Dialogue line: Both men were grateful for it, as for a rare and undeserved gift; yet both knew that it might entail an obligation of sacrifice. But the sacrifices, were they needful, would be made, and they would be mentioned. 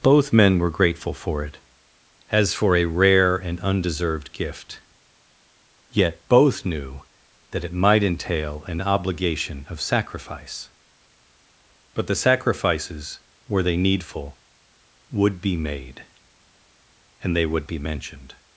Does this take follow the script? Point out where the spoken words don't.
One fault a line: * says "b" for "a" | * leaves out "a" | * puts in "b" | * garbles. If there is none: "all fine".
all fine